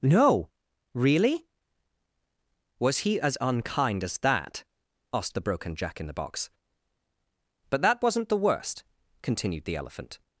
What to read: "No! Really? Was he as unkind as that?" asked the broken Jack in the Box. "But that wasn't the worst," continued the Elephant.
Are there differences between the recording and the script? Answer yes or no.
no